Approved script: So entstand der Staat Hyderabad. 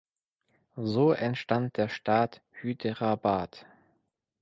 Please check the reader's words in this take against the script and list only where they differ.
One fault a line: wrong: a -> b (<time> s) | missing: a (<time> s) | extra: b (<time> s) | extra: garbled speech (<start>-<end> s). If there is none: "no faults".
no faults